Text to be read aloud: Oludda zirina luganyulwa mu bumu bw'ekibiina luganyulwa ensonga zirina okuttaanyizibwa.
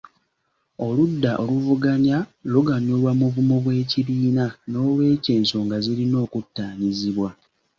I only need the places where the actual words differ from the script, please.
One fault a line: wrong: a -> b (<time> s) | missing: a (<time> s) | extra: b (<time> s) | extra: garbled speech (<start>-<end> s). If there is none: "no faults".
wrong: zirina -> oluvuganya (1.4 s)
wrong: luganyulwa -> n'olwekyo (4.7 s)